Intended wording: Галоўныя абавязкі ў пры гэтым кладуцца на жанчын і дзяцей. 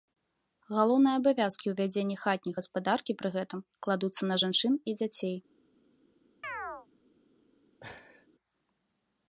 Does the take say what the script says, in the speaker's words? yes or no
no